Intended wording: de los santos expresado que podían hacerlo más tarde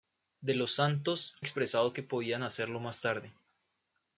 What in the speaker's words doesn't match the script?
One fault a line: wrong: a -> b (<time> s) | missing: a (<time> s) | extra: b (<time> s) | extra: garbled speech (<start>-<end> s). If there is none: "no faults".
no faults